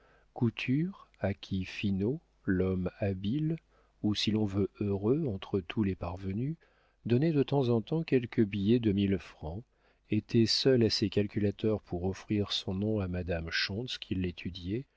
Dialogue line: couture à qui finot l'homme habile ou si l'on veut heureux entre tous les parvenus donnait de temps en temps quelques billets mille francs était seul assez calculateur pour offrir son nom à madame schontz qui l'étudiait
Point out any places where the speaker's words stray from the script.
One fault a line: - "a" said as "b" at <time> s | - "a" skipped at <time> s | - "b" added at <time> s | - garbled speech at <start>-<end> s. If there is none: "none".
- "de" added at 8.8 s